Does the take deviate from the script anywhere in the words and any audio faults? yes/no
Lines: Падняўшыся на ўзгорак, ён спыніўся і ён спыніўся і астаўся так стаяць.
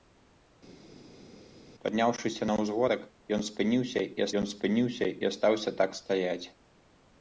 no